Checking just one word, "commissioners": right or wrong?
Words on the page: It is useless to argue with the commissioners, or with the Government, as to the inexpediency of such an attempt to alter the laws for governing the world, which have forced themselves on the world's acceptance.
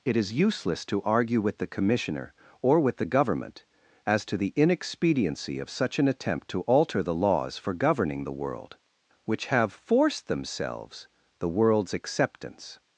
wrong